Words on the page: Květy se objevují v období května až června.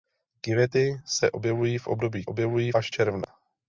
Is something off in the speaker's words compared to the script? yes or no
yes